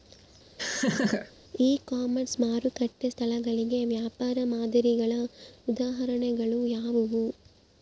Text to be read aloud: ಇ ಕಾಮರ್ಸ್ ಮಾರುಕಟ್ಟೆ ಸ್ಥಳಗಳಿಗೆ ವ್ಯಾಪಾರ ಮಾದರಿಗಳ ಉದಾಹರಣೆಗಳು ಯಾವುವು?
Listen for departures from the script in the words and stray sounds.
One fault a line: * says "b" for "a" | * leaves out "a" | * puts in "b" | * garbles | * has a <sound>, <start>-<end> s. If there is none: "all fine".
* has a laugh, 0.6-1.3 s